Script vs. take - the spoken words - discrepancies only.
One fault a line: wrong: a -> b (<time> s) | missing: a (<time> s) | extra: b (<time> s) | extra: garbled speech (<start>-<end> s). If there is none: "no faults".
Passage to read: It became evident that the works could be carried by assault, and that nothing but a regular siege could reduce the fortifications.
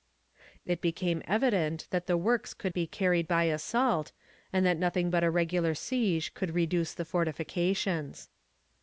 no faults